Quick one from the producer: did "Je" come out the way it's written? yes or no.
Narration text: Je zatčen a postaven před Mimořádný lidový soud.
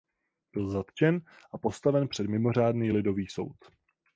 no